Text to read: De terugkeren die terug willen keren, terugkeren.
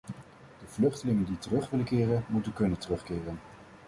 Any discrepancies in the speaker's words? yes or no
yes